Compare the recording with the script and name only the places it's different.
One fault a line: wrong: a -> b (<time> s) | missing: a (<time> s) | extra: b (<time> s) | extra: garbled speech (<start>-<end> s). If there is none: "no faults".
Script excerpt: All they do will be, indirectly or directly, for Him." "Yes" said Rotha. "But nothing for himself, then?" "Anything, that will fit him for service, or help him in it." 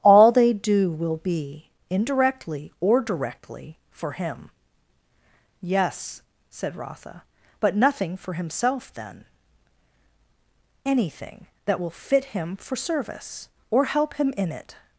no faults